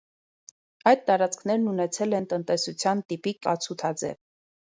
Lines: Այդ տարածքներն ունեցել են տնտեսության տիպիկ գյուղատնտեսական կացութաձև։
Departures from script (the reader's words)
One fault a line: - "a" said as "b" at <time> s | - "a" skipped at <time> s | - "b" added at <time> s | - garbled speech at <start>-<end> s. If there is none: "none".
- "գյուղատնտեսական" skipped at 3.4 s